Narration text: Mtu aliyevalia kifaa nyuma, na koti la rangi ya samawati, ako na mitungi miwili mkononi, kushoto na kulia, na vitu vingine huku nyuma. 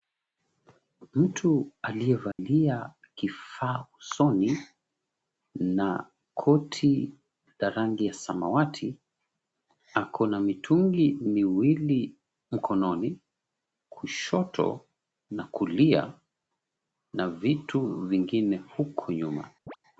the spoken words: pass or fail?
fail